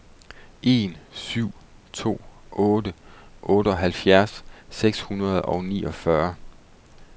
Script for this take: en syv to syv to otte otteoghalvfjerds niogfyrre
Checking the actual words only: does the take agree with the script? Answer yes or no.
no